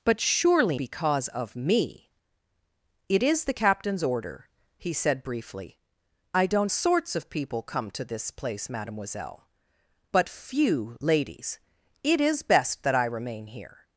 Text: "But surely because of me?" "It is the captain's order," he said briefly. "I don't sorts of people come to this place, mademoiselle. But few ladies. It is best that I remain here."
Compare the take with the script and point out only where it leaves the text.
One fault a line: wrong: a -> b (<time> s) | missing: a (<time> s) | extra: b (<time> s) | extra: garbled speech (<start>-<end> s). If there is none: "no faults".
no faults